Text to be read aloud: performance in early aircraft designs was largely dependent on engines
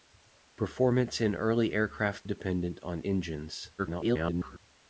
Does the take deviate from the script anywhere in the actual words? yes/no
yes